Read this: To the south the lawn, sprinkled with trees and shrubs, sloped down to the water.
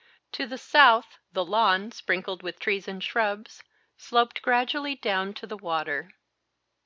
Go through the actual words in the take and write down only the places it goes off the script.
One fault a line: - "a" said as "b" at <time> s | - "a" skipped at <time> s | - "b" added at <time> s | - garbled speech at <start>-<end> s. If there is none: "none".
- "gradually" added at 4.4 s